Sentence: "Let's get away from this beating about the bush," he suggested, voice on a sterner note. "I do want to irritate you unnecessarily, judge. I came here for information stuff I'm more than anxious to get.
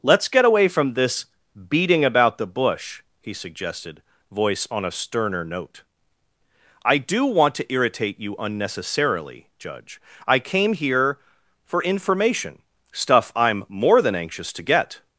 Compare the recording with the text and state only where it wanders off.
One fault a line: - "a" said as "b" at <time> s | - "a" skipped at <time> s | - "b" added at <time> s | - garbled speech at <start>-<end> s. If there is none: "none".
none